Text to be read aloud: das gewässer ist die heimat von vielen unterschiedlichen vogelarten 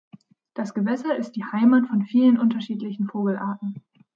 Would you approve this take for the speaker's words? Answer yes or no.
yes